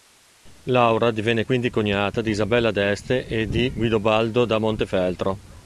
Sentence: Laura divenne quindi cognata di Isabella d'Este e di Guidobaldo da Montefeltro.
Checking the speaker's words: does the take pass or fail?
pass